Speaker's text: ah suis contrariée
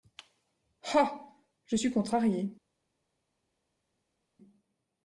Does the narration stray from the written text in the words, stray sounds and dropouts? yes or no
yes